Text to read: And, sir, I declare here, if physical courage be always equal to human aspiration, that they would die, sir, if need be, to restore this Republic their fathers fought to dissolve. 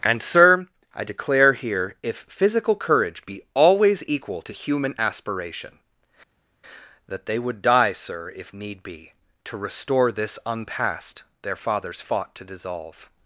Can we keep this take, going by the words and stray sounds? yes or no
no